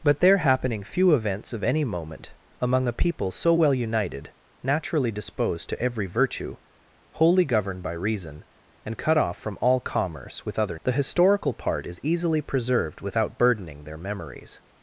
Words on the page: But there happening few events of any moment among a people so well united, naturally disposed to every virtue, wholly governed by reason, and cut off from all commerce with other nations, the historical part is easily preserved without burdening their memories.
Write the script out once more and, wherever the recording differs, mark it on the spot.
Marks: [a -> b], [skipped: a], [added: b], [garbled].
But there happening few events of any moment among a people so well united, naturally disposed to every virtue, wholly governed by reason, and cut off from all commerce with other [skipped: nations,] the historical part is easily preserved without burdening their memories.